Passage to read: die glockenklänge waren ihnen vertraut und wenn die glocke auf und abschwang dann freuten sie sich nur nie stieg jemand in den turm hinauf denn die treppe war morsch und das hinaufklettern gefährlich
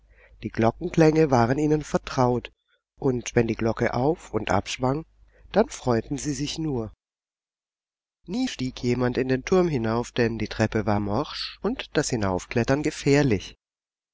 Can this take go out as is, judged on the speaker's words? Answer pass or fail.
pass